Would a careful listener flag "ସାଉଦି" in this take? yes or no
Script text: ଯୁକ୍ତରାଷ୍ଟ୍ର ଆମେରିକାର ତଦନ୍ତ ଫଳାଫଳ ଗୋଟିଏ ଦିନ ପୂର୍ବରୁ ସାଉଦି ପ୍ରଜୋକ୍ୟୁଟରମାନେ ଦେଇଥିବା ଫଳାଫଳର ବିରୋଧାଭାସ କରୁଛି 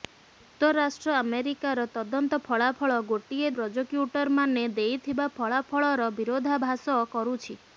yes